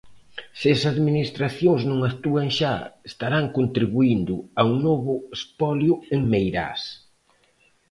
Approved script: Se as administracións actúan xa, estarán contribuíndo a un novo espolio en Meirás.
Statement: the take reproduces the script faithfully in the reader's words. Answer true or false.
false